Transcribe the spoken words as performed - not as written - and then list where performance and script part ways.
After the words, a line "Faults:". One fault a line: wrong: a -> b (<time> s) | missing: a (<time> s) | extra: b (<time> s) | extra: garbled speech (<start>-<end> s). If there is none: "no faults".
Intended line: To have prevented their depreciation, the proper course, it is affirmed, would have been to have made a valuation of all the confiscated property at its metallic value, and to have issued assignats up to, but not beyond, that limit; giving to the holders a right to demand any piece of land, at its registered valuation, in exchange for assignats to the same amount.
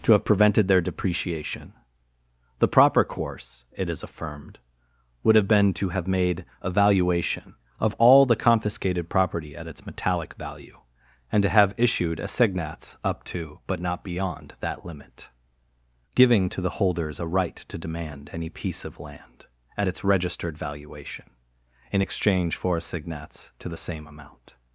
To have prevented their depreciation, the proper course, it is affirmed, would have been to have made a valuation of all the confiscated property at its metallic value, and to have issued assignats up to, but not beyond, that limit; giving to the holders a right to demand any piece of land, at its registered valuation, in exchange for assignats to the same amount.
Faults:
no faults